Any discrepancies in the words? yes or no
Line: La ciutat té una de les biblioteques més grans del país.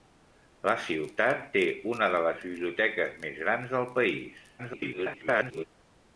yes